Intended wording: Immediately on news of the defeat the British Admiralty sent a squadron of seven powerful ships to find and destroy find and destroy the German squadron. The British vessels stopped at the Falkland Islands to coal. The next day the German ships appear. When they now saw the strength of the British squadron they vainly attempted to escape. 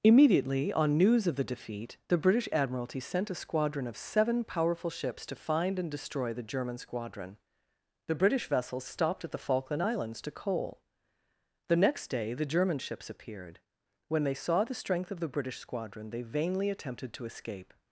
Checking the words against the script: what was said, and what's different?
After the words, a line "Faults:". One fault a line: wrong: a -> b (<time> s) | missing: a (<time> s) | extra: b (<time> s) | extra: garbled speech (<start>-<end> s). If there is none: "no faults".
Immediately on news of the defeat the British Admiralty sent a squadron of seven powerful ships to find and destroy the German squadron. The British vessels stopped at the Falkland Islands to coal. The next day the German ships appeared. When they saw the strength of the British squadron they vainly attempted to escape.
Faults:
missing: find and destroy (6.3 s)
wrong: appear -> appeared (13.1 s)
missing: now (14.4 s)